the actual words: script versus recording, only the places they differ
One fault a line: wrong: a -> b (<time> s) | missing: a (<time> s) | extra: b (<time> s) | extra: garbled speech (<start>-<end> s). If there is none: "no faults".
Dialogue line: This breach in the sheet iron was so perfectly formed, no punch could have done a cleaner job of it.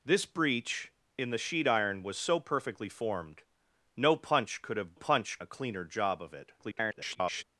wrong: done -> punch (4.9 s)
extra: garbled speech (6.6-7.4 s)